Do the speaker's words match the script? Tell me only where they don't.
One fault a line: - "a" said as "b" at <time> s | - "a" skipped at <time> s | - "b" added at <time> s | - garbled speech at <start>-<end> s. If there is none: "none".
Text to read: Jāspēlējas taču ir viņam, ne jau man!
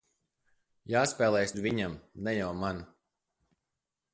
- "taču" skipped at 1.6 s